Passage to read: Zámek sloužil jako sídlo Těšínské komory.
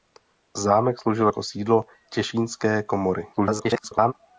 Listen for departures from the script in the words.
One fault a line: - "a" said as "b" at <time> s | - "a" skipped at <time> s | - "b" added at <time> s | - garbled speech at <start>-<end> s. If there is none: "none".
- garbled speech at 3.3-4.1 s